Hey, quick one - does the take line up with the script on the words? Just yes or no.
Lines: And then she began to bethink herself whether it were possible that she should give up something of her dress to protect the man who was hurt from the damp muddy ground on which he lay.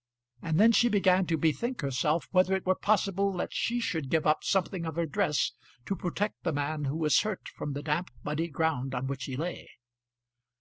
yes